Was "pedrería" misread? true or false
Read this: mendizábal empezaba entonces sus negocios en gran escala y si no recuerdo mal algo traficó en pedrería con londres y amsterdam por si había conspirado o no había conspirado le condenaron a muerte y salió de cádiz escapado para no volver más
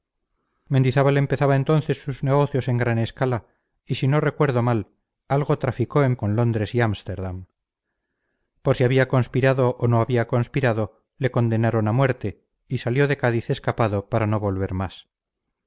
true